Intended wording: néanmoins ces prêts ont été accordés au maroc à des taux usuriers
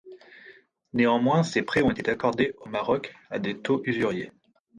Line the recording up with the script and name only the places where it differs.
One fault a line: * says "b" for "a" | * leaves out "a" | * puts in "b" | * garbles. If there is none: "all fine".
all fine